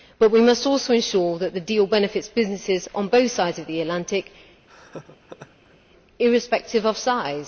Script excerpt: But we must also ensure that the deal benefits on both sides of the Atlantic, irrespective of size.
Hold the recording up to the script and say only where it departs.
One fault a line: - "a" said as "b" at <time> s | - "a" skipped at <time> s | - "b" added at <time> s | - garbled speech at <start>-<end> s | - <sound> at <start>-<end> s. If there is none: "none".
- "businesses" added at 2.3 s
- laugh at 4.7-5.8 s